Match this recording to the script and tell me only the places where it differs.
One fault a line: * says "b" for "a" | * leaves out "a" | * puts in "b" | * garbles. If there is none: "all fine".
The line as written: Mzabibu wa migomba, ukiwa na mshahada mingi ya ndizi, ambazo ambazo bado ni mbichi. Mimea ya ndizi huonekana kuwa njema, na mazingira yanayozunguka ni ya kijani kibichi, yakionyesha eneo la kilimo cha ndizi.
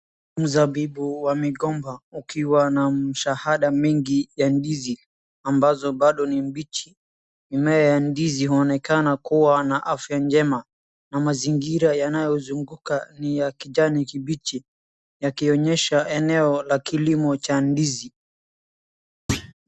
* leaves out "ambazo"
* puts in "na afya"